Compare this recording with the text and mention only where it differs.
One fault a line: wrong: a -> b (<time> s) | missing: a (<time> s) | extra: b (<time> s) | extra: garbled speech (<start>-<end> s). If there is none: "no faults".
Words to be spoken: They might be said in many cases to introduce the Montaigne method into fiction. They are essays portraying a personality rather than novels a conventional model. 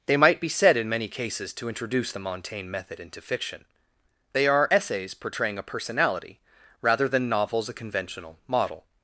no faults